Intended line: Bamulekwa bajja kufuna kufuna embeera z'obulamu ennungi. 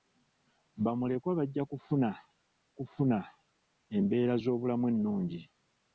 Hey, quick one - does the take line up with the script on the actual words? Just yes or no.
yes